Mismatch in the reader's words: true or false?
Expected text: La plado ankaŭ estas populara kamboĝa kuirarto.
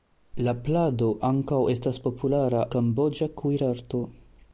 false